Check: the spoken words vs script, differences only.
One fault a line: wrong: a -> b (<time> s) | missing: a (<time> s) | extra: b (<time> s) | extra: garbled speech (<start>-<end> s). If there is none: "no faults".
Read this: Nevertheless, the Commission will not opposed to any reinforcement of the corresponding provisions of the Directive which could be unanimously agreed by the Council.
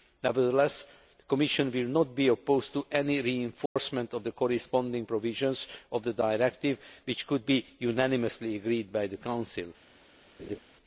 extra: be (2.1 s)